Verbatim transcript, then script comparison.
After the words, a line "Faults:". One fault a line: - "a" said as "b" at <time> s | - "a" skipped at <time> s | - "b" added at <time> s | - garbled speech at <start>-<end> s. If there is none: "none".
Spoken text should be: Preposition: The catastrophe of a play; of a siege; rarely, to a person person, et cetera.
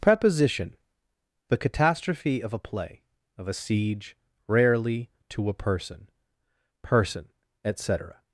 Preposition: The catastrophe of a play; of a siege; rarely, to a person person, et cetera.
Faults:
none